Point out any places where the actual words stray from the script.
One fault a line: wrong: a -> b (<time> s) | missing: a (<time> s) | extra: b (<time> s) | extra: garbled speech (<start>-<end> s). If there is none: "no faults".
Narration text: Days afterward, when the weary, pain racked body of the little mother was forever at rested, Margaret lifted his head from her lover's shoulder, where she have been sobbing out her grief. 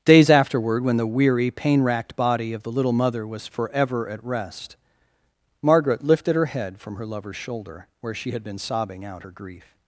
wrong: rested -> rest (4.2 s)
wrong: his -> her (6.3 s)
wrong: have -> had (8.3 s)